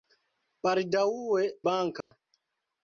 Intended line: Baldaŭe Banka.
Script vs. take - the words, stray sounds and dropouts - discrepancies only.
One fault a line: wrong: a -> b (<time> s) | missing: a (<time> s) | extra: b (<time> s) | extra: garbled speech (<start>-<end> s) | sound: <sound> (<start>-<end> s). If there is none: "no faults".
sound: dropout (2.0-2.1 s)